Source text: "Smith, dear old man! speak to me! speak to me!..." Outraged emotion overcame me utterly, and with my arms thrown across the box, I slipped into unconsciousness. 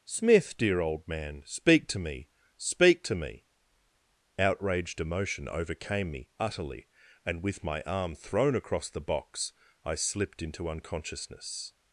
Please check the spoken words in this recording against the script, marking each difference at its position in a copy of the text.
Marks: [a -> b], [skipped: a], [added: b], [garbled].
"Smith, dear old man! speak to me! speak to me!..." Outraged emotion overcame me utterly, and with my [arms -> arm] thrown across the box, I slipped into unconsciousness.